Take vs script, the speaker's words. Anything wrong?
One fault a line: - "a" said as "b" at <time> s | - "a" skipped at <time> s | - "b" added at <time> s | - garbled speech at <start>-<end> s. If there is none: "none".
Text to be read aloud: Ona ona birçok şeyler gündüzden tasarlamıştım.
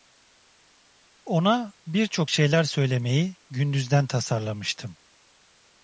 - "ona" skipped at 1.7 s
- "söylemeyi" added at 2.6 s